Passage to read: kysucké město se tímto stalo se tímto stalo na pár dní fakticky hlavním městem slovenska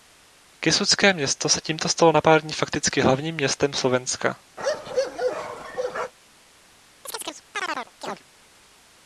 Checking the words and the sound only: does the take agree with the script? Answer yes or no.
no